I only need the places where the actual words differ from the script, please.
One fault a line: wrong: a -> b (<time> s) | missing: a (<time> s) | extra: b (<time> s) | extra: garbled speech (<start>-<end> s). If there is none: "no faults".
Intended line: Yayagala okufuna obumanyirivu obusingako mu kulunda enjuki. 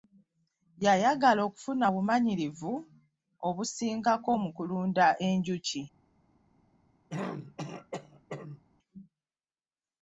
no faults